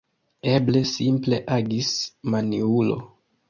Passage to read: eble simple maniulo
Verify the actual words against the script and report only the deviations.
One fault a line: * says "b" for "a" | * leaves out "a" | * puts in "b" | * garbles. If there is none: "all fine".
* puts in "agis"